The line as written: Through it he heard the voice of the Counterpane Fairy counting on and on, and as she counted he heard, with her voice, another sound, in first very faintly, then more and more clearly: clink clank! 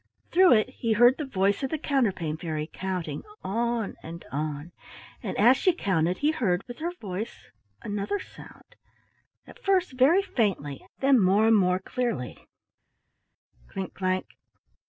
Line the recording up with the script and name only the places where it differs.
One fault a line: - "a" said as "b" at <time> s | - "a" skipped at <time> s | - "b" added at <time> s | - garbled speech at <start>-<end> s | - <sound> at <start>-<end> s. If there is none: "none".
- "in" said as "at" at 9.4 s